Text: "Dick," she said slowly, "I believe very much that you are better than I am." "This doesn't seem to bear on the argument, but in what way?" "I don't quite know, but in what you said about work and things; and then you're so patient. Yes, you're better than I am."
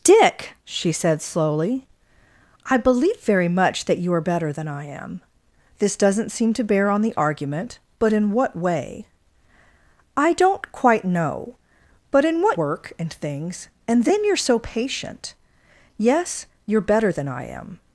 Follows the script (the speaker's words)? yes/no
no